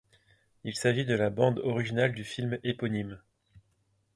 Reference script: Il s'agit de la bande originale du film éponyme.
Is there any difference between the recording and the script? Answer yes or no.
no